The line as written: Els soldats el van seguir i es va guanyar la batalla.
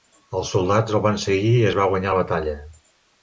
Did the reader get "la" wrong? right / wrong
right